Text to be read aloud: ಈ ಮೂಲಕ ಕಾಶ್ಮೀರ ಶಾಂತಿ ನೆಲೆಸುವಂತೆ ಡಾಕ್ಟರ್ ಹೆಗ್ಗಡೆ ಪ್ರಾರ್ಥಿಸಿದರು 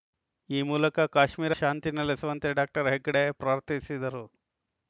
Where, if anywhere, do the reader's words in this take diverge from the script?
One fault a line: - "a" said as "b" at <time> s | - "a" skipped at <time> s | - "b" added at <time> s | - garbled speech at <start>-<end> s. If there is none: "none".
none